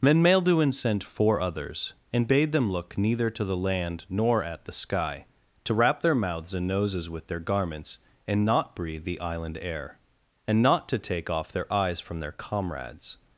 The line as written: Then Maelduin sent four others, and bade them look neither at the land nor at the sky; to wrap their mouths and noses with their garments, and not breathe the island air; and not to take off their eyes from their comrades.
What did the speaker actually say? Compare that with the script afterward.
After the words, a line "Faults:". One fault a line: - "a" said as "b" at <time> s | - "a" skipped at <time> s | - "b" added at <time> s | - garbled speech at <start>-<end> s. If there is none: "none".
Then Maelduin sent four others, and bade them look neither to the land nor at the sky; to wrap their mouths and noses with their garments, and not breathe the island air; and not to take off their eyes from their comrades.
Faults:
- "at" said as "to" at 3.3 s